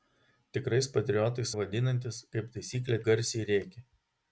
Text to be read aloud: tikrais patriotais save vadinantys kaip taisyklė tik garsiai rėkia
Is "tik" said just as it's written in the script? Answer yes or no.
no